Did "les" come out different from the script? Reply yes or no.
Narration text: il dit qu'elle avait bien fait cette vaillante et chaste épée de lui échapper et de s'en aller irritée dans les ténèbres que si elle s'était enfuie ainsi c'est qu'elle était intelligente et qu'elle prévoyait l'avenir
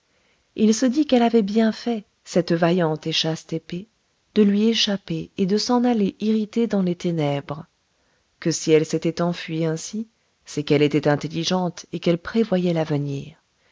no